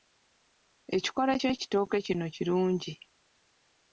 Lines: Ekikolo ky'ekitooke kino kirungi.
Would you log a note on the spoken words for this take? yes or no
no